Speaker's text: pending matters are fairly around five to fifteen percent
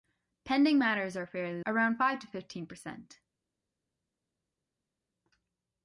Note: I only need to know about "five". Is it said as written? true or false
true